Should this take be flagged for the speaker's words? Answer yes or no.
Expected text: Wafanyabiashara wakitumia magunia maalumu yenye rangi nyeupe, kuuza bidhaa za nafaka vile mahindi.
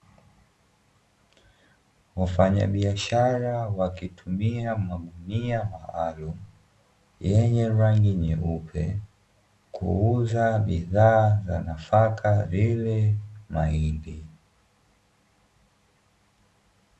no